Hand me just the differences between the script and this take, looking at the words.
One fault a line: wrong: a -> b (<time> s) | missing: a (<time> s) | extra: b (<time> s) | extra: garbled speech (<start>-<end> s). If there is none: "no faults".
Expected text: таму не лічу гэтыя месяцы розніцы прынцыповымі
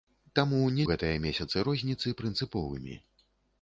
missing: лічу (0.8 s)